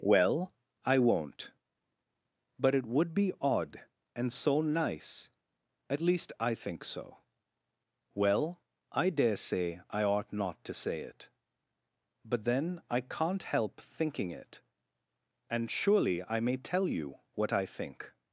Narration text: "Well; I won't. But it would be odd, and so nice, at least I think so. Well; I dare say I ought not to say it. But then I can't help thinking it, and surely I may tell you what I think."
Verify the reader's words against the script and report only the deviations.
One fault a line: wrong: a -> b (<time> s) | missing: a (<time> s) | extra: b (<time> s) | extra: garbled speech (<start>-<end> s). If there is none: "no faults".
no faults